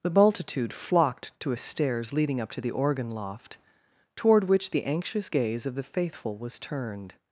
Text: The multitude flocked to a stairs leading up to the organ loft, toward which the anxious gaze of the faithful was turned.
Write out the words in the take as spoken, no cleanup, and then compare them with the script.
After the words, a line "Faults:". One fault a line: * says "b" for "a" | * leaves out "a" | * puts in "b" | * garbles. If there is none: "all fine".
The multitude flocked to a stairs leading up to the organ loft, toward which the anxious gaze of the faithful was turned.
Faults:
all fine